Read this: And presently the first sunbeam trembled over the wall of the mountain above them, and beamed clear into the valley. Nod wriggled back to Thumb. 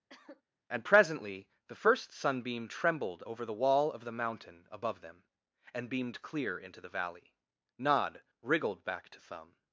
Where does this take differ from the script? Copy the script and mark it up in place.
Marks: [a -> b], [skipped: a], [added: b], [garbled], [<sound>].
[cough] And presently the first sunbeam trembled over the wall of the mountain above them, and beamed clear into the valley. Nod wriggled back to Thumb.